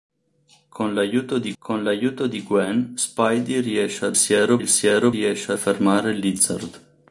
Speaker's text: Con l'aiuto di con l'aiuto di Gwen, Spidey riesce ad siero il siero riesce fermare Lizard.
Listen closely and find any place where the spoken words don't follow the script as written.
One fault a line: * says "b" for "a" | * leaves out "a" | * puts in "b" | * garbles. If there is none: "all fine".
all fine